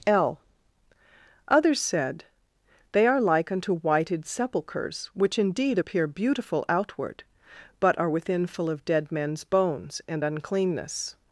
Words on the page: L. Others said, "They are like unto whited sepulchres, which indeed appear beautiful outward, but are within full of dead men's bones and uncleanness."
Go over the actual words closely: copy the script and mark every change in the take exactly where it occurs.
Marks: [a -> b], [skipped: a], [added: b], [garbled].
L. Others said, "They are like unto whited sepulchres, which indeed appear beautiful outward, but are within full of dead men's bones and uncleanness."